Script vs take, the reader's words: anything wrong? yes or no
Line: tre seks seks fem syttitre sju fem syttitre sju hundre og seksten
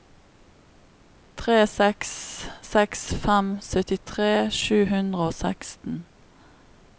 yes